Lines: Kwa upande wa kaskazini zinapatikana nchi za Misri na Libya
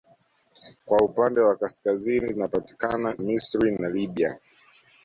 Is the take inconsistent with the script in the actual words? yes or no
yes